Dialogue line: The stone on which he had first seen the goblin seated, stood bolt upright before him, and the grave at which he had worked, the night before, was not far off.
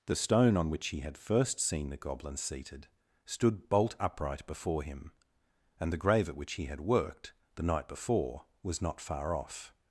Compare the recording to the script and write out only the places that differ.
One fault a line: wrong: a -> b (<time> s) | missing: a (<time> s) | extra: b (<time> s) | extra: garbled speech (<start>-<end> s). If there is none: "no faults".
no faults